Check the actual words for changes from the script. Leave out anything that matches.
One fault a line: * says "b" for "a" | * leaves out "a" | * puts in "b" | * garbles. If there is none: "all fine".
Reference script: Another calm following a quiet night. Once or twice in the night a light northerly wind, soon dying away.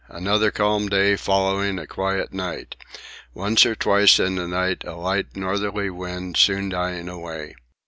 * puts in "day"